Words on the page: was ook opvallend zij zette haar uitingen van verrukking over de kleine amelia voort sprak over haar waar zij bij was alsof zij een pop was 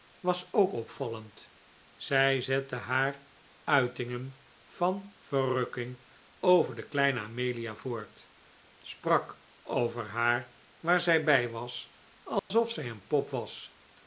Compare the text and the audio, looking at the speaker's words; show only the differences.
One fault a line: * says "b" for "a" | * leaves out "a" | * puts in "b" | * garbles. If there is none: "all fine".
all fine